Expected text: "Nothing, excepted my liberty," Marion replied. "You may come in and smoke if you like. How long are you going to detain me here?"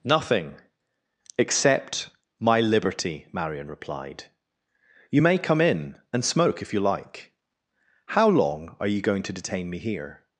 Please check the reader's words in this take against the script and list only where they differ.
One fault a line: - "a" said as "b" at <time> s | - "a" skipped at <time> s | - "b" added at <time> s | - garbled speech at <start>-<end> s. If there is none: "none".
- "excepted" said as "except" at 1.4 s